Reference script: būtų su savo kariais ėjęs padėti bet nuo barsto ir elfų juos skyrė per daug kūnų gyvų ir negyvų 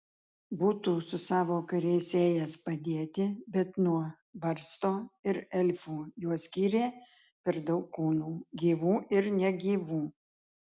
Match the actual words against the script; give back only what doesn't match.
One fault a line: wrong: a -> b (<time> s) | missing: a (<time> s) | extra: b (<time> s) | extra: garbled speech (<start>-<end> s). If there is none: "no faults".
no faults